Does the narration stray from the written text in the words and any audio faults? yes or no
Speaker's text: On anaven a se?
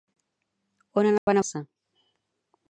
yes